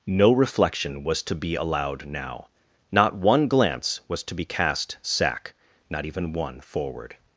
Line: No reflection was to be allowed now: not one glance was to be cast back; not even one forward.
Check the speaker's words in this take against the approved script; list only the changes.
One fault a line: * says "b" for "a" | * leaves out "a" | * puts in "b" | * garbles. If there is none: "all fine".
* says "sack" for "back"